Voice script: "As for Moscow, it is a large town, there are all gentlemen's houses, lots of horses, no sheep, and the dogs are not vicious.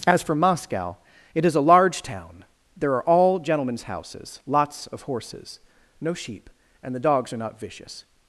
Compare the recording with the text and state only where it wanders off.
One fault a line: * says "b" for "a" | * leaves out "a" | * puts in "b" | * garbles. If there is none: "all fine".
all fine